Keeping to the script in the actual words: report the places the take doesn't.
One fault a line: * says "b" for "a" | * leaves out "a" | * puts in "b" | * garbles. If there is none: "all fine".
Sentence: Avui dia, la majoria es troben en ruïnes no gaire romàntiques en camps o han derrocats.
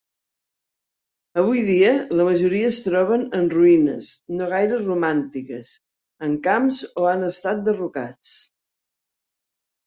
* puts in "estat"